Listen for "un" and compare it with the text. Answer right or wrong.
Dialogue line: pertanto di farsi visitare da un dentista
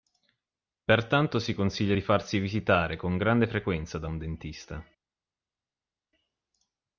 right